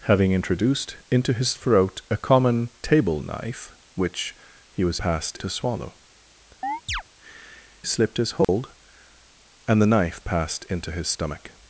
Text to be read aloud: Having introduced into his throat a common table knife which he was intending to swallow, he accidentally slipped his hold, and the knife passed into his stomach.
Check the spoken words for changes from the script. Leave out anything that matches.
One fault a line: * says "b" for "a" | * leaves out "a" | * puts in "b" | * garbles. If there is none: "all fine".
* says "passed" for "intending"
* leaves out "he accidentally"